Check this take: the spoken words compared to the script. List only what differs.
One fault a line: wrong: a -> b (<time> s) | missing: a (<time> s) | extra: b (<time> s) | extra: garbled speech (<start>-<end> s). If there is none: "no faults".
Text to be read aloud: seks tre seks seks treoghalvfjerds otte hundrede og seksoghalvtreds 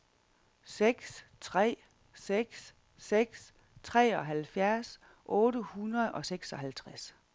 no faults